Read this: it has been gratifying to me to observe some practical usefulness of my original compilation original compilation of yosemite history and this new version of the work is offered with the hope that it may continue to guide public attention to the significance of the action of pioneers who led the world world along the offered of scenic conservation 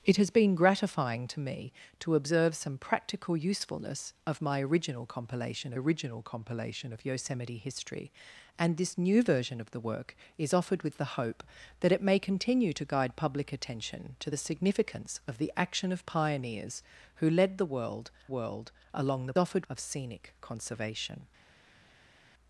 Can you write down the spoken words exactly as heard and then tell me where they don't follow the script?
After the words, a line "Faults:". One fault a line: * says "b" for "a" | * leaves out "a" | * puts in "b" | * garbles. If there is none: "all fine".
it has been gratifying to me to observe some practical usefulness of my original compilation original compilation of yosemite history and this new version of the work is offered with the hope that it may continue to guide public attention to the significance of the action of pioneers who led the world world along the offered of scenic conservation
Faults:
all fine